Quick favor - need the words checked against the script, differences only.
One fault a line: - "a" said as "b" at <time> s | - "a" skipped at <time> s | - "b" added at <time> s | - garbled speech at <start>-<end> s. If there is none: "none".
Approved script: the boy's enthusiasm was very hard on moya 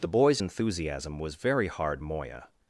- "on" skipped at 2.0 s